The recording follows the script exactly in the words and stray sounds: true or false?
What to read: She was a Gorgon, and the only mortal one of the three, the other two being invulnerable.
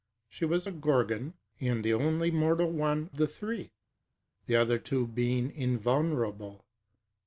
false